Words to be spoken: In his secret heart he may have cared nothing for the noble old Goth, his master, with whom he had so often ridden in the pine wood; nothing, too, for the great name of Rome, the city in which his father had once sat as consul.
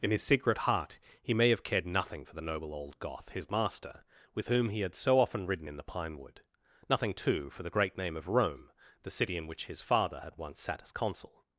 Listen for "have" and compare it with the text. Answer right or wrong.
right